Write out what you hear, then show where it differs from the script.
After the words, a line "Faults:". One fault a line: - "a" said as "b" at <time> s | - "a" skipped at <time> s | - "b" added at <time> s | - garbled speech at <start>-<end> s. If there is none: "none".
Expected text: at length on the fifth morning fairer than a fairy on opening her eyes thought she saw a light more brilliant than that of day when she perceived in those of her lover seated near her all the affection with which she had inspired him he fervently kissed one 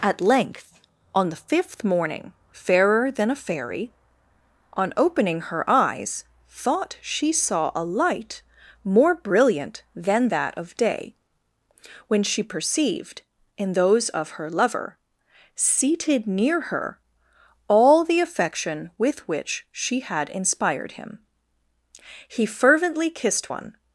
at length on the fifth morning fairer than a fairy on opening her eyes thought she saw a light more brilliant than that of day when she perceived in those of her lover seated near her all the affection with which she had inspired him he fervently kissed one
Faults:
none